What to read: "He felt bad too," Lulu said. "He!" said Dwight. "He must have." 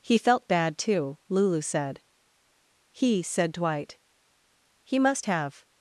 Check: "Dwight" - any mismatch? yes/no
no